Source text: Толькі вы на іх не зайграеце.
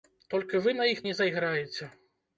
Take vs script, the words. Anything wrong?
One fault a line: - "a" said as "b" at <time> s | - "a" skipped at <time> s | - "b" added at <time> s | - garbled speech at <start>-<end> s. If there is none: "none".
none